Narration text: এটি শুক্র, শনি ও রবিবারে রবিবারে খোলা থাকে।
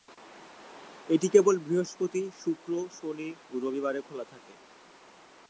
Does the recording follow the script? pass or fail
fail